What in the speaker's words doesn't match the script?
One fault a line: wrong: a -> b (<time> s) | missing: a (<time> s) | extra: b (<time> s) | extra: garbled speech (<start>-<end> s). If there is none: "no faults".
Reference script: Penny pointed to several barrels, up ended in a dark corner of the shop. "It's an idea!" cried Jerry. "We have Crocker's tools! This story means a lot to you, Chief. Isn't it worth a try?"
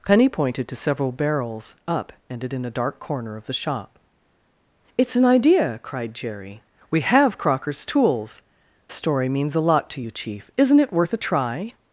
missing: This (8.4 s)